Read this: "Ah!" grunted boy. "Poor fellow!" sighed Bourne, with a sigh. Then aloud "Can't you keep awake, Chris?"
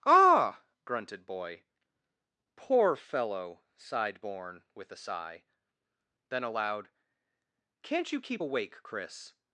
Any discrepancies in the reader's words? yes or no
no